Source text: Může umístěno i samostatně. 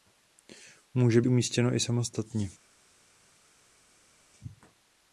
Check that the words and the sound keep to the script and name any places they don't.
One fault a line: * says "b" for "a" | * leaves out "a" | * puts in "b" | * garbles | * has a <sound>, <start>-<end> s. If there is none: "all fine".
all fine